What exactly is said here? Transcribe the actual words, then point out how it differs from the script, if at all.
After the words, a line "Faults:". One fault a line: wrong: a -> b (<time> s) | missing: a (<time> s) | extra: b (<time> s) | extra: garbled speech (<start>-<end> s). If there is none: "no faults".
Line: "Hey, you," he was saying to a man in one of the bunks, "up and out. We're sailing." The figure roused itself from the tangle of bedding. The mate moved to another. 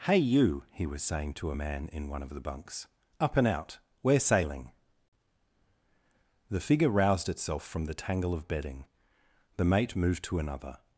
"Hey, you," he was saying to a man in one of the bunks, "up and out. We're sailing." The figure roused itself from the tangle of bedding. The mate moved to another.
Faults:
no faults